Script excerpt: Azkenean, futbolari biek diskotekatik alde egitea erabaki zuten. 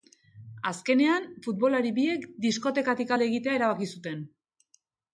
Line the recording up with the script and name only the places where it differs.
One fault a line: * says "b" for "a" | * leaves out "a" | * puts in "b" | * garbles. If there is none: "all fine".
all fine